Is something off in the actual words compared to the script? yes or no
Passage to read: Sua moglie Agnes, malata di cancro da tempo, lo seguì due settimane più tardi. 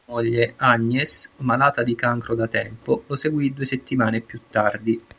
no